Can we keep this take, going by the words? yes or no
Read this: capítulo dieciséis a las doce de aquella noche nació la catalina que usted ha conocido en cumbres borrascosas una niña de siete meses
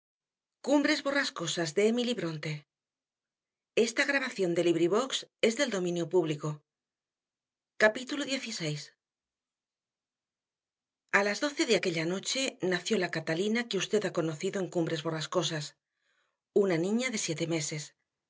yes